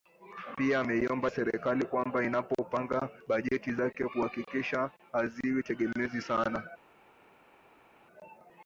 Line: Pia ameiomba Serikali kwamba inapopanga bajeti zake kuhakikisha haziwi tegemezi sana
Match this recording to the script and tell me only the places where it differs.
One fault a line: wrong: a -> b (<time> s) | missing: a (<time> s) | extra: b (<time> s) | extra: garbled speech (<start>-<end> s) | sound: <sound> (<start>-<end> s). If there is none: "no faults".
no faults